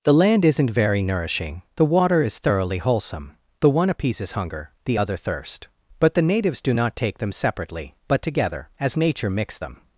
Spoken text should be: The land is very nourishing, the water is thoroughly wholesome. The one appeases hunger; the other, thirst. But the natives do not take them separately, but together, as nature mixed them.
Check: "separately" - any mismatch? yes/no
no